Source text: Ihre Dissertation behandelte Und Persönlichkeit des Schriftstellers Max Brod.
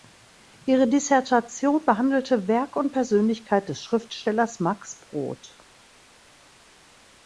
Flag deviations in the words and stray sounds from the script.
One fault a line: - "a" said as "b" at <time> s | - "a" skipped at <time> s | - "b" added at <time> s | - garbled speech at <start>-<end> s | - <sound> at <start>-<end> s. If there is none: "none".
- "Werk" added at 2.5 s